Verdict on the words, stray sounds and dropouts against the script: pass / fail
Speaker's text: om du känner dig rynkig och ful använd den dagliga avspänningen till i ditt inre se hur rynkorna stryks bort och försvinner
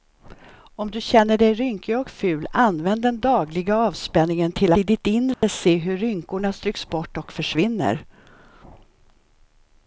fail